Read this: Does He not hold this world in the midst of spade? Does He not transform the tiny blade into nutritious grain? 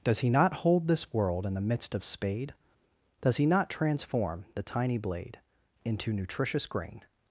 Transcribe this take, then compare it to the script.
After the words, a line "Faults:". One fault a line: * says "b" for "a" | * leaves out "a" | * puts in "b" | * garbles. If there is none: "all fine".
Does He not hold this world in the midst of spade? Does He not transform the tiny blade into nutritious grain?
Faults:
all fine